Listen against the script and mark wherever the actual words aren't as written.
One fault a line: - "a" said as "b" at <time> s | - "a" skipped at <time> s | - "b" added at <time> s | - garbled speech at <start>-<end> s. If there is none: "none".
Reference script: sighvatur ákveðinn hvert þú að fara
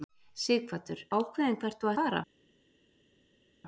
none